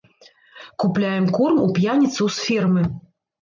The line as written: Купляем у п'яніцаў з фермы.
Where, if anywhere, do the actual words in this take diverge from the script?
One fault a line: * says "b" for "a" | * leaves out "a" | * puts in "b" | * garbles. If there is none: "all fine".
* puts in "корм"